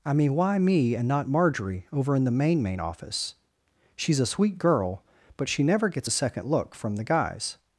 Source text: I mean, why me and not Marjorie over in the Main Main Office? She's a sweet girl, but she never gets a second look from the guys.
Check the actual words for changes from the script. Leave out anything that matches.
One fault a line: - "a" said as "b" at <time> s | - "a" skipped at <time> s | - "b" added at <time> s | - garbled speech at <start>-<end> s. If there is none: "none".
none